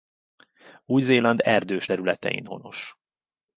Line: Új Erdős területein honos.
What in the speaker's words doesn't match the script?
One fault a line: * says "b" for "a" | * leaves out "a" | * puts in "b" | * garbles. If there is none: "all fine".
* puts in "Zéland"